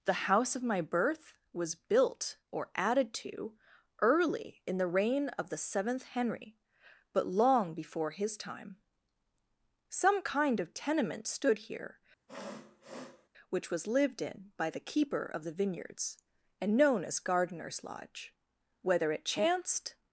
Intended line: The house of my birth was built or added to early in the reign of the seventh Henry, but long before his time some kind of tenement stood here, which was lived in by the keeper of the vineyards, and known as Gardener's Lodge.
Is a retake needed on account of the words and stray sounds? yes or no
yes